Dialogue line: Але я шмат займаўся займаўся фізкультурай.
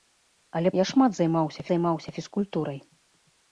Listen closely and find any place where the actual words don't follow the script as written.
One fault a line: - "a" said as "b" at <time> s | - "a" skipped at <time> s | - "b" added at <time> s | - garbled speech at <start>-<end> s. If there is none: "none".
none